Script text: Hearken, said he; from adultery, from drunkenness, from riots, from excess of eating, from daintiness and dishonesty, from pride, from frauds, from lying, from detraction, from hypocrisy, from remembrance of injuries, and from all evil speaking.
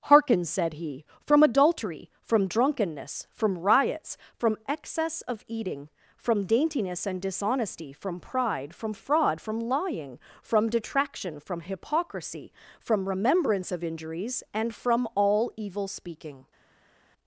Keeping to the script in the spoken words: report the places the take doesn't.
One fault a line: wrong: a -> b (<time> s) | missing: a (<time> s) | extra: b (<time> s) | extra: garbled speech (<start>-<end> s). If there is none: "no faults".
wrong: frauds -> fraud (8.9 s)